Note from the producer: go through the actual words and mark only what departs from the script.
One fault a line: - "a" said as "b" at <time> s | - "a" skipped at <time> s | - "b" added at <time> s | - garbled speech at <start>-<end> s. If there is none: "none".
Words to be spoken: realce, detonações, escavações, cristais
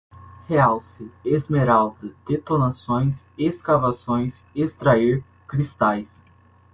- "esmeralda" added at 1.2 s
- "extrair" added at 4.5 s